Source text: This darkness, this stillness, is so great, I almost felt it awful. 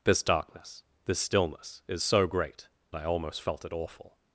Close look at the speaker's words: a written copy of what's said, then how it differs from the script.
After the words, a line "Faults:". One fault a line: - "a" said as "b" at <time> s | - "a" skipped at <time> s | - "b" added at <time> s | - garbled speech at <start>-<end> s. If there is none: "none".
This darkness, this stillness, is so great, I almost felt it awful.
Faults:
none